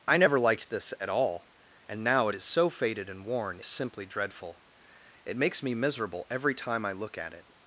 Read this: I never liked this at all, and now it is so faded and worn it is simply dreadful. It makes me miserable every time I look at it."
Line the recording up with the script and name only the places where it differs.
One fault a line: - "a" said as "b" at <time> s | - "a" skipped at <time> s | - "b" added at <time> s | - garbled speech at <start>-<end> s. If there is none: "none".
- "it is" skipped at 3.6 s